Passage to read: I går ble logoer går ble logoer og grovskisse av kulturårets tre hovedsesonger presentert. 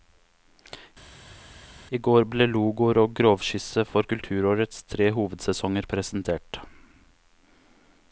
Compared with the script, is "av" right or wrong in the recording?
wrong